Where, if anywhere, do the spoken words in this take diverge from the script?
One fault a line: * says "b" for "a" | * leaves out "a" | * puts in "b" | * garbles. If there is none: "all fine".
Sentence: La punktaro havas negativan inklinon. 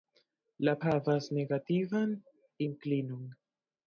* leaves out "punktaro"